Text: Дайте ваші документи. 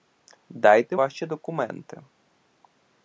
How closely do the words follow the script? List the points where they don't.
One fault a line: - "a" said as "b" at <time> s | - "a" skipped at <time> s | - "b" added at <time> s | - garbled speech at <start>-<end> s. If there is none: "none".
none